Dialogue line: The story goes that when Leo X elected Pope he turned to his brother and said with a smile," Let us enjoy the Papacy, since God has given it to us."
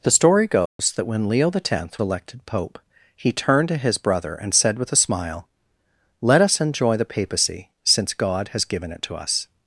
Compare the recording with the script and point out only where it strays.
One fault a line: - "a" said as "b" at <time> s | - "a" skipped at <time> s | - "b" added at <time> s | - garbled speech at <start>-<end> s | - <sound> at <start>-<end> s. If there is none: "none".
- dropout at 0.7-0.8 s